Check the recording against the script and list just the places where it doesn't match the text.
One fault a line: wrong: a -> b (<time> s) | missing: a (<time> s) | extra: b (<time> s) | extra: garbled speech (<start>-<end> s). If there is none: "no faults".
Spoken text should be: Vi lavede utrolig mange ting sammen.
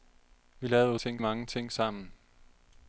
wrong: utrolig -> ting (1.0 s)